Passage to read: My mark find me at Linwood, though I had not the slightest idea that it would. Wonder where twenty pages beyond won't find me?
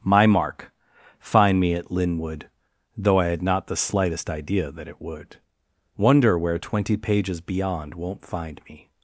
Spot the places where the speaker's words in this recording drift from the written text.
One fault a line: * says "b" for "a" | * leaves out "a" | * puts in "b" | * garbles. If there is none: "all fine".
all fine